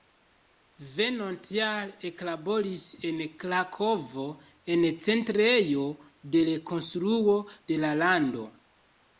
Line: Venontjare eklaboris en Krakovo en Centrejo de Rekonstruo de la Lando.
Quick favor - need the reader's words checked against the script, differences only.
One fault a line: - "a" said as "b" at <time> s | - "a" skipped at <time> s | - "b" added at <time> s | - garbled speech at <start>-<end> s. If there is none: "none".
none